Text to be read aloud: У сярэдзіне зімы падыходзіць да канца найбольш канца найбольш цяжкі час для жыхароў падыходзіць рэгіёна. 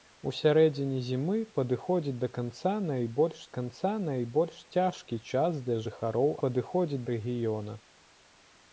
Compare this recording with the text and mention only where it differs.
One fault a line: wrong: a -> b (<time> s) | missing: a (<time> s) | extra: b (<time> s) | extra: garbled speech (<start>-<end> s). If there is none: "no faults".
no faults